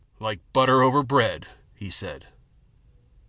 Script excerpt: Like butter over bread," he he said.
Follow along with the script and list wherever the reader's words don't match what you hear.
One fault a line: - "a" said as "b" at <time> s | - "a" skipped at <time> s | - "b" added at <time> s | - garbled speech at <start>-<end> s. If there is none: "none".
- "he" skipped at 1.9 s